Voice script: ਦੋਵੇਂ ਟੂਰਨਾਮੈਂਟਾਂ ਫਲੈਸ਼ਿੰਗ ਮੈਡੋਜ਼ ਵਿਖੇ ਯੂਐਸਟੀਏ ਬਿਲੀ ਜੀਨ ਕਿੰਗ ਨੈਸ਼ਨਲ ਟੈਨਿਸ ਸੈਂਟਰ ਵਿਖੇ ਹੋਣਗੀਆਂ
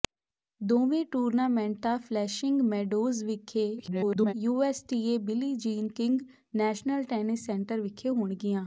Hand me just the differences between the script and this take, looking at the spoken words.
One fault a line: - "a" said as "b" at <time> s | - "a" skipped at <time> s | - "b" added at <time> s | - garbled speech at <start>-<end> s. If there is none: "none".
- garbled speech at 3.8-4.3 s